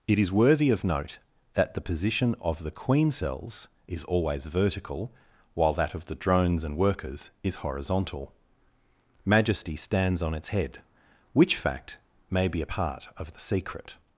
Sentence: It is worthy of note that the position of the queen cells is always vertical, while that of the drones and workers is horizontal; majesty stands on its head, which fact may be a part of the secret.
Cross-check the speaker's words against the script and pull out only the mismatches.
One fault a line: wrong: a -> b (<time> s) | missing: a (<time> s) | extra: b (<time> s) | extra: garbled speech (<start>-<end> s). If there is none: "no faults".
no faults